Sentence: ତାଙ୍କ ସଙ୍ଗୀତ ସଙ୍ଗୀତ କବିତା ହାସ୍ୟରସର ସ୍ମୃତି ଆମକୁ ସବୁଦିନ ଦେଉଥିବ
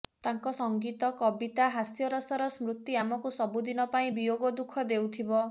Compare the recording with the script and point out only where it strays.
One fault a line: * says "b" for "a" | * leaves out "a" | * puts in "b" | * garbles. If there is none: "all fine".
* leaves out "ସଙ୍ଗୀତ"
* puts in "ପାଇଁ ବିୟୋଗ ଦୁଃଖ"